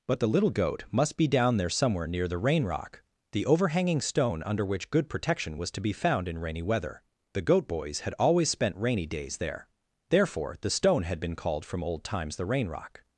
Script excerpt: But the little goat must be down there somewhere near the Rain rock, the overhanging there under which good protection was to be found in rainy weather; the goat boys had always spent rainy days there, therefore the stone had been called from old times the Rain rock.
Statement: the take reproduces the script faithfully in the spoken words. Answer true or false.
false